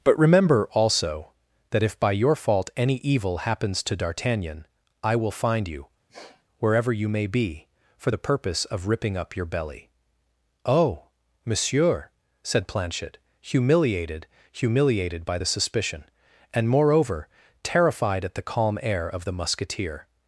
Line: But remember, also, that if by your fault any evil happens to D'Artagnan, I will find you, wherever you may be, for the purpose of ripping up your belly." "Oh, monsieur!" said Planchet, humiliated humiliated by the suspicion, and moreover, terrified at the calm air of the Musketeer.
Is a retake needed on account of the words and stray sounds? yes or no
yes